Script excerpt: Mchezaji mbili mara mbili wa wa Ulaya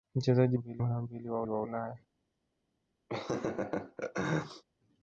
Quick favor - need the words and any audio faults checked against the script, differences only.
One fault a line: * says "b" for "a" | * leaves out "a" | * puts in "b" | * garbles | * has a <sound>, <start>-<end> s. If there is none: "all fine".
* has a laugh, 3.1-4.6 s